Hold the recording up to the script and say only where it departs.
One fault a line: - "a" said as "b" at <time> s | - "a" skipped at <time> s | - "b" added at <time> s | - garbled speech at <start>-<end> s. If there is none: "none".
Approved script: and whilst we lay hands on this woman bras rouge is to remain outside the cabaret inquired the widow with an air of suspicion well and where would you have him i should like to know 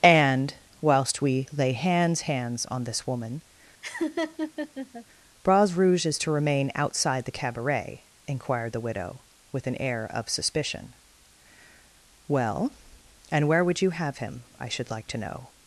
- "hands" added at 2.2 s